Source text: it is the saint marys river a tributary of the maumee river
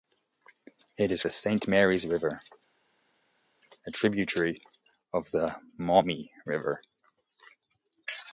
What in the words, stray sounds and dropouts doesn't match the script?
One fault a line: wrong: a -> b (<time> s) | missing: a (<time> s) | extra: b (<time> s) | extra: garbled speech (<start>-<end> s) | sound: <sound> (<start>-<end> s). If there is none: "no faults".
no faults